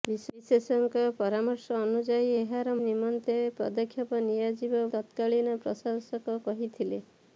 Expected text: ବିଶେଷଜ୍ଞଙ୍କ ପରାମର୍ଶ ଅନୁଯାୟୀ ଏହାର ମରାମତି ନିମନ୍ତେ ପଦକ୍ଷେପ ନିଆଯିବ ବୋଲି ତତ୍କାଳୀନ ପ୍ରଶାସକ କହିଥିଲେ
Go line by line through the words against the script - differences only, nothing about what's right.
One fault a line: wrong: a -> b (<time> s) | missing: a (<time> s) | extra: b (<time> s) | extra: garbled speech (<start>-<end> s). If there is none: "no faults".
missing: ମରାମତି (2.7 s)
missing: ବୋଲି (4.8 s)